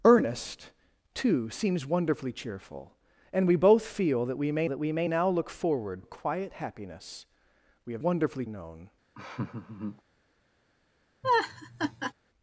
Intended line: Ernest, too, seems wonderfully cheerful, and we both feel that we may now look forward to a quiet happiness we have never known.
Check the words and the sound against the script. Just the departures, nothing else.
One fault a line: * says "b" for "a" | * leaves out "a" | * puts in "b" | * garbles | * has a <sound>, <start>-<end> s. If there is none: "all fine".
* puts in "that we may"
* leaves out "to"
* says "wonderfully" for "never"
* has a laugh, 9.1-10.0 s
* has a laugh, 11.2-12.1 s